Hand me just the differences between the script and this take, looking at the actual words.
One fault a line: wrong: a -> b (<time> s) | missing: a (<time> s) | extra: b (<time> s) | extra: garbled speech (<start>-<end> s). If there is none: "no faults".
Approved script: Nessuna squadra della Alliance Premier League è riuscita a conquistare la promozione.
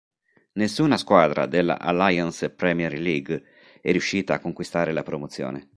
no faults